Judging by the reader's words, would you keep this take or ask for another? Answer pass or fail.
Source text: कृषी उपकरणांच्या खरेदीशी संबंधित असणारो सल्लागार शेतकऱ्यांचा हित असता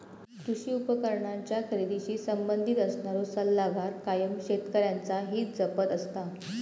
fail